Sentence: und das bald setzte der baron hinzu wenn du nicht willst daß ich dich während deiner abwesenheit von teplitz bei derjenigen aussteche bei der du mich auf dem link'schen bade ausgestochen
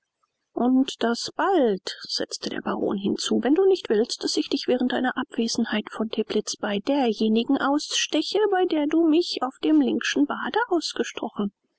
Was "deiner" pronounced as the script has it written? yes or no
yes